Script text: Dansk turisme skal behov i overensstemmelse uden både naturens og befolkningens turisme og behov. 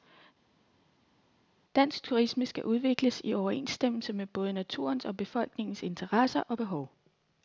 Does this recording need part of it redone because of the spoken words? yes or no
yes